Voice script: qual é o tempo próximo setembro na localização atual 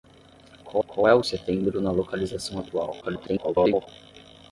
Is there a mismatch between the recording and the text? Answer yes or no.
yes